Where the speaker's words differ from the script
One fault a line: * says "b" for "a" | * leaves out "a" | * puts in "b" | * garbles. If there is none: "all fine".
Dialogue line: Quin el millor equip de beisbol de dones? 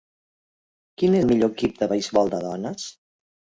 all fine